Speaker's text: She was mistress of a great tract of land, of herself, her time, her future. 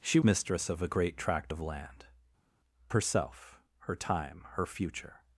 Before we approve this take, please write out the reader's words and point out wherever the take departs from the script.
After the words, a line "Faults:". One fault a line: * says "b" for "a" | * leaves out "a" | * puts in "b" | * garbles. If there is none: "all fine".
She mistress of a great tract of land, herself, her time, her future.
Faults:
* leaves out "was"
* leaves out "of"